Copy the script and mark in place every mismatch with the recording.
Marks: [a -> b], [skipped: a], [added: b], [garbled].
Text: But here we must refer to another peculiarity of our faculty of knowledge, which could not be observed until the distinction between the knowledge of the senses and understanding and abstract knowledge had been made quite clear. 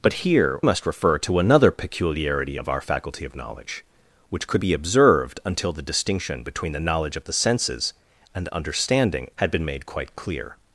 But here [skipped: we] must refer to another peculiarity of our faculty of knowledge, which could [skipped: not] be observed until the distinction between the knowledge of the senses and understanding [skipped: and abstract knowledge] had been made quite clear.